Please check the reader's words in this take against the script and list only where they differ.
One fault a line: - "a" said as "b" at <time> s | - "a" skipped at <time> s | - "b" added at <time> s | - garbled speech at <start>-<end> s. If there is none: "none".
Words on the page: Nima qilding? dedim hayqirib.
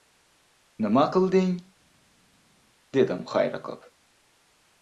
none